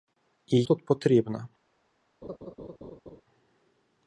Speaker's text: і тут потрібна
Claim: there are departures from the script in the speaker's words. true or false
false